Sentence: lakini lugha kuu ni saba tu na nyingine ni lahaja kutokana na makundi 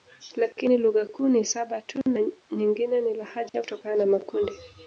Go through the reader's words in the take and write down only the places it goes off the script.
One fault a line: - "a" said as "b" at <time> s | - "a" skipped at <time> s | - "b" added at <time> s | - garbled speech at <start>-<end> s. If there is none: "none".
none